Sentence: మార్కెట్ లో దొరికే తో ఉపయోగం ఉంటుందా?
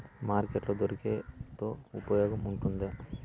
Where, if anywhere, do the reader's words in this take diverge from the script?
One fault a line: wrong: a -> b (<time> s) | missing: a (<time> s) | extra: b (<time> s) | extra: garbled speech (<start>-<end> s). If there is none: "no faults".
no faults